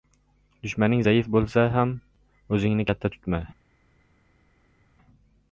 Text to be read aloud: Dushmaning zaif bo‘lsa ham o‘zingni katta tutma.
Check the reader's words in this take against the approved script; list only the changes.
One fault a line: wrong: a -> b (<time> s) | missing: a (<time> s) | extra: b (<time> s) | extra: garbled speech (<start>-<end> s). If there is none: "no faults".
no faults